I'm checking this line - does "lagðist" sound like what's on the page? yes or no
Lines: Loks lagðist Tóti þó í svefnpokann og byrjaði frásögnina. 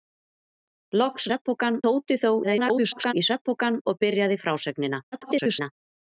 no